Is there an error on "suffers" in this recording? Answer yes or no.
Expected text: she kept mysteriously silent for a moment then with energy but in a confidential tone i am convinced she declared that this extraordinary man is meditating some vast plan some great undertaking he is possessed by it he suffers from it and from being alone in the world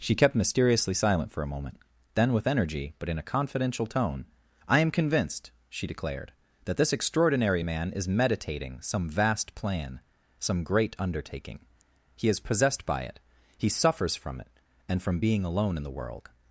no